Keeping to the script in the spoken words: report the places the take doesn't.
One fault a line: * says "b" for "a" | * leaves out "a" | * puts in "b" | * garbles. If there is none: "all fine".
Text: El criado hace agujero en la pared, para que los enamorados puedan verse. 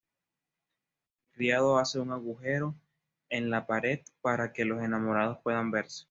* puts in "un"